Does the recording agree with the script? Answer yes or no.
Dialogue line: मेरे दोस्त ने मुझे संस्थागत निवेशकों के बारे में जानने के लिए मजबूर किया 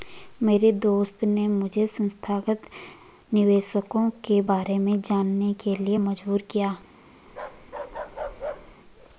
yes